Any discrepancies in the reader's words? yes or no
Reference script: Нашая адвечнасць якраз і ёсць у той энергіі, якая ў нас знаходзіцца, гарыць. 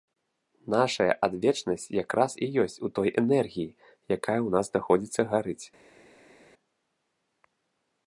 no